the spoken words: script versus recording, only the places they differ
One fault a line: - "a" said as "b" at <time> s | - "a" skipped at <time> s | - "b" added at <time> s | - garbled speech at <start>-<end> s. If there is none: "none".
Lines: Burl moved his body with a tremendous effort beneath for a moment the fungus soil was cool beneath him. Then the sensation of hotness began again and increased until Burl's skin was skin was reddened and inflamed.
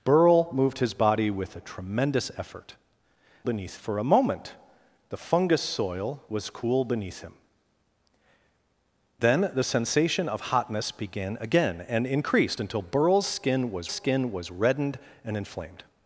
none